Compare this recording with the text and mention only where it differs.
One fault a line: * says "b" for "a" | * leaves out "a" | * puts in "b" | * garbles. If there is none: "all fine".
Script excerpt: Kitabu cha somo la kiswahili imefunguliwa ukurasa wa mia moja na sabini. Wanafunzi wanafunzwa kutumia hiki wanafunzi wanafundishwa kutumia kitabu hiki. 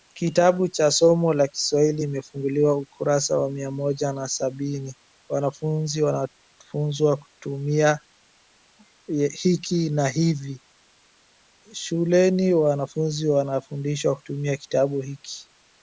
* puts in "na hivi shuleni"